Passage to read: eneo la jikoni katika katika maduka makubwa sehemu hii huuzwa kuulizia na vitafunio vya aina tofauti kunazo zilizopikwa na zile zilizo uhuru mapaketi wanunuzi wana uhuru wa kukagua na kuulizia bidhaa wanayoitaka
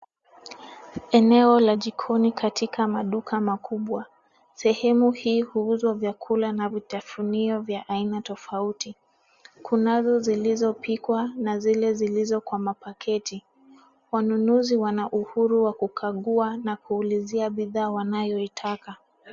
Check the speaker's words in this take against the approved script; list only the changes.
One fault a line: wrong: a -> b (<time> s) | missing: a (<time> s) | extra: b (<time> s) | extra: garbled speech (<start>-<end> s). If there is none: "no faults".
missing: katika (2.9 s)
wrong: kuulizia -> vyakula (5.9 s)
wrong: uhuru -> kwa (12.4 s)